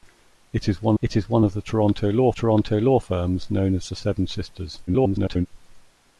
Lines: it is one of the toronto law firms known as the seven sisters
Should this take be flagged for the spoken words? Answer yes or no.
yes